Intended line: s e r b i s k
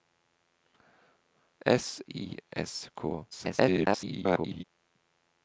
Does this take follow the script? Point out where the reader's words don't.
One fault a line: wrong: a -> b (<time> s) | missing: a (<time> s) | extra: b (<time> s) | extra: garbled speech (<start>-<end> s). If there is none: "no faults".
missing: e r b (2.0 s)
extra: garbled speech (3.3-4.6 s)